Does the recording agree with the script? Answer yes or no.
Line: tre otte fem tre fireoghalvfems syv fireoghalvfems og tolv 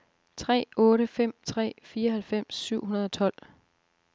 no